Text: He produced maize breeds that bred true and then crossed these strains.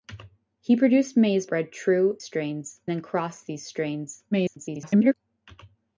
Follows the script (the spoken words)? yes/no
no